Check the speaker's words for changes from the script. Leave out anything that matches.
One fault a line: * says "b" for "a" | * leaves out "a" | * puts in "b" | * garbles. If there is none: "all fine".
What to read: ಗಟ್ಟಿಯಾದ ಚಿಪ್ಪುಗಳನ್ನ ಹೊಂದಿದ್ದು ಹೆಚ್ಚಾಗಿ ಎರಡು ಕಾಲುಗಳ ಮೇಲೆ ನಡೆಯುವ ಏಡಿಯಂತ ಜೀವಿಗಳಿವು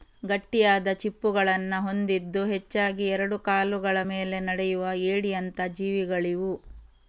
all fine